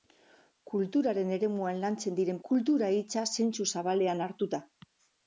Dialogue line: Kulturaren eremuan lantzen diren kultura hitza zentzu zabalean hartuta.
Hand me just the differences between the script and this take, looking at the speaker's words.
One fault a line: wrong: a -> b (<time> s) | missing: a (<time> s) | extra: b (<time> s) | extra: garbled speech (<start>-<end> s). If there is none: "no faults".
no faults